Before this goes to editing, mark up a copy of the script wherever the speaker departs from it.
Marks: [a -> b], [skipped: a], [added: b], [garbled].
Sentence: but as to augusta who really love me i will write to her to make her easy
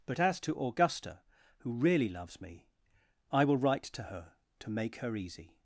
but as to augusta who really [love -> loves] me i will write to her to make her easy